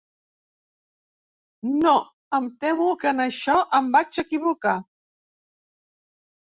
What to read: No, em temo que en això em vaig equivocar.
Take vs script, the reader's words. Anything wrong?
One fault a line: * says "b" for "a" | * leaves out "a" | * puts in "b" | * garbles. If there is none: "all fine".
all fine